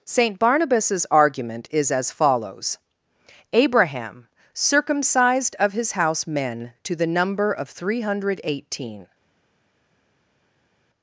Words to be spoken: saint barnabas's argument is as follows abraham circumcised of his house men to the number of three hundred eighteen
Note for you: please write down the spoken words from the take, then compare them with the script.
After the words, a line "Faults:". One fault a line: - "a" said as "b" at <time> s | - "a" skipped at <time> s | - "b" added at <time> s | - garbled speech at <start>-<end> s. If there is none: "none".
saint barnabas's argument is as follows abraham circumcised of his house men to the number of three hundred eighteen
Faults:
none